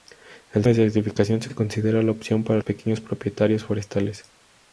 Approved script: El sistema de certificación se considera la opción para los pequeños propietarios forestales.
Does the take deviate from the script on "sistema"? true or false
true